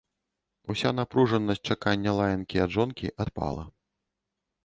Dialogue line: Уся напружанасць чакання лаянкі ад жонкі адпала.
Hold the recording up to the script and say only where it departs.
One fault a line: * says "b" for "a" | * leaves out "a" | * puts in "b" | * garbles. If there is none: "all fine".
all fine